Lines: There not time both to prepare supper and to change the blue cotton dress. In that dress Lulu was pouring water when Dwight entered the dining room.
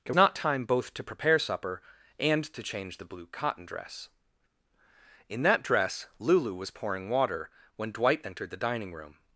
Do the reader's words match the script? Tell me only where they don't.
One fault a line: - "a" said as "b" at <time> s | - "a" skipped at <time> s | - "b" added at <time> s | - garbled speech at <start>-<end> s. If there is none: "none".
none